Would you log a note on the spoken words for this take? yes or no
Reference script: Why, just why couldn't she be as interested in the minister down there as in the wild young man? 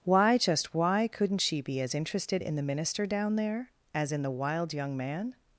no